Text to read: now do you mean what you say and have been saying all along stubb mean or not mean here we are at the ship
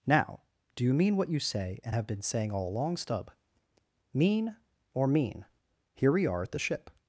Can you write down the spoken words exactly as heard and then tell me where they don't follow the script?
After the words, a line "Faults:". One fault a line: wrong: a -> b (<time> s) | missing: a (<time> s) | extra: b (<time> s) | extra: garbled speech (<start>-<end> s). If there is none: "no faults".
now do you mean what you say and have been saying all along stubb mean or mean here we are at the ship
Faults:
missing: not (5.1 s)